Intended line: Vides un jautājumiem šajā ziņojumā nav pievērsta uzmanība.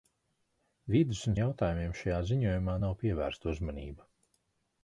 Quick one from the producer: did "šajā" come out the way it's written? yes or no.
yes